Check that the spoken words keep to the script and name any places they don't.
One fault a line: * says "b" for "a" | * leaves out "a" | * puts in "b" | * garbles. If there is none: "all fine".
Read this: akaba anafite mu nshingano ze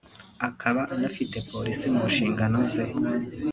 * puts in "polisi"